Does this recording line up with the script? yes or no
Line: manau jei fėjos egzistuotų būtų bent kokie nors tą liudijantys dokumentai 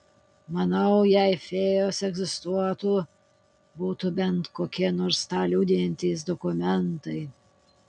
yes